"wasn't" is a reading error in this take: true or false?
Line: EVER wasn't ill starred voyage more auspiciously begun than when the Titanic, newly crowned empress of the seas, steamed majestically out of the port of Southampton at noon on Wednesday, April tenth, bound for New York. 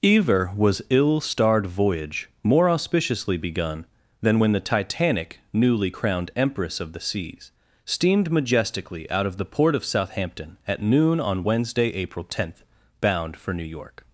true